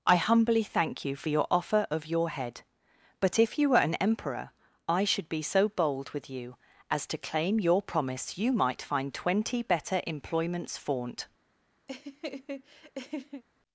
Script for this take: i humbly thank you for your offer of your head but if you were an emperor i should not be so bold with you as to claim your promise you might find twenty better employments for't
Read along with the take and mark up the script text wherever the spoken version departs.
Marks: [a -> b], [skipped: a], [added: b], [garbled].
i humbly thank you for your offer of your head but if you were an emperor i should [skipped: not] be so bold with you as to claim your promise you might find twenty better employments for't